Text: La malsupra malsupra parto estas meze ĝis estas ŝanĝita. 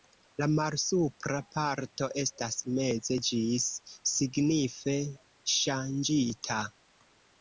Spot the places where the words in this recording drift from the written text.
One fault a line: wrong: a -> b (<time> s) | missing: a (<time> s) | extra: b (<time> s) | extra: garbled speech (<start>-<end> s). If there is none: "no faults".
missing: malsupra (1.4 s)
wrong: estas -> signife (4.1 s)